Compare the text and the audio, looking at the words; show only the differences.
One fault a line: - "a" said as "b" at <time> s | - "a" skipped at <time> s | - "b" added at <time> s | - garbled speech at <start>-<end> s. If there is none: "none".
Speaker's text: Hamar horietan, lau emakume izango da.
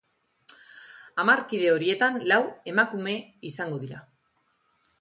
- "kide" added at 1.5 s
- "da" said as "dira" at 3.9 s